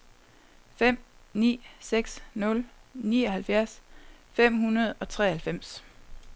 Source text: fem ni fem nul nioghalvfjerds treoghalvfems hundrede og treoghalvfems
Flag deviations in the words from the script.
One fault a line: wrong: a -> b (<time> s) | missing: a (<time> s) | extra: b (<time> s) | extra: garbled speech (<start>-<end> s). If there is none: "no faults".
wrong: fem -> seks (1.9 s)
wrong: treoghalvfems -> fem (4.3 s)